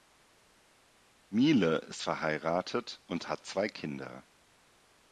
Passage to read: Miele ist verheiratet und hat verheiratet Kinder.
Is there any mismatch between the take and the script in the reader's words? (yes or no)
yes